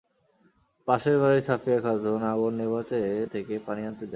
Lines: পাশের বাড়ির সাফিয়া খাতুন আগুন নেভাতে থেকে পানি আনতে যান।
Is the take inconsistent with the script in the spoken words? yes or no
no